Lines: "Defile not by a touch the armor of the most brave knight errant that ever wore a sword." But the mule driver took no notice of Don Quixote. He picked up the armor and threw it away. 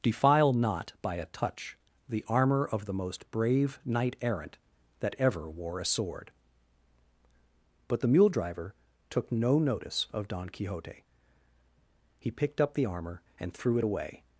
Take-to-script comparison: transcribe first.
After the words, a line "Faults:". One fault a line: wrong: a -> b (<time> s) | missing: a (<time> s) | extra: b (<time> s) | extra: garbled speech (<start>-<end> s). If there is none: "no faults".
"Defile not by a touch the armor of the most brave knight errant that ever wore a sword." But the mule driver took no notice of Don Quixote. He picked up the armor and threw it away.
Faults:
no faults